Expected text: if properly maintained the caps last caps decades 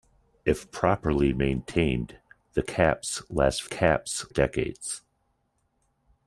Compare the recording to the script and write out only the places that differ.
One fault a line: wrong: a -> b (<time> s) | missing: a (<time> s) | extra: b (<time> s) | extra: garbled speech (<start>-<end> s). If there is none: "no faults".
no faults